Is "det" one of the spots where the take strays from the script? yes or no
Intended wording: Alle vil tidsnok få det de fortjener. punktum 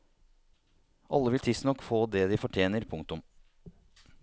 no